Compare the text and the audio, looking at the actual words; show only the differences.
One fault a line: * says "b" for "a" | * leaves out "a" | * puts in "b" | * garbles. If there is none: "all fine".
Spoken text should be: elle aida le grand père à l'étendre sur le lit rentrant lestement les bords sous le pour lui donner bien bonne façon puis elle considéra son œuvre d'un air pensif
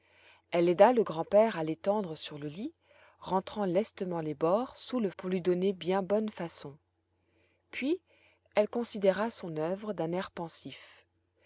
all fine